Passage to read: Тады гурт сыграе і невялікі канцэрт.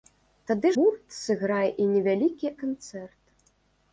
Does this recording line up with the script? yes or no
yes